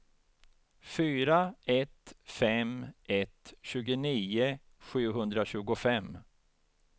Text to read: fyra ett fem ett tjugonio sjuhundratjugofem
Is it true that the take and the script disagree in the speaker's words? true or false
false